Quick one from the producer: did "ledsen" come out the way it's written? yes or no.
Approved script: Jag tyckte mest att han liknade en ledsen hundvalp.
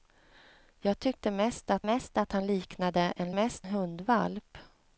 no